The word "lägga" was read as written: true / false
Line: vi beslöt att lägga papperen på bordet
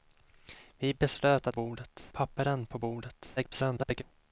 false